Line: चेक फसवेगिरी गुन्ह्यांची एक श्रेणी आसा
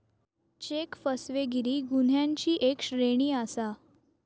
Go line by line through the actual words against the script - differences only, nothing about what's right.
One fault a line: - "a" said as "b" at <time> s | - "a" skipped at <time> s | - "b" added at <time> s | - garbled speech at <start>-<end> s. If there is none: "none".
none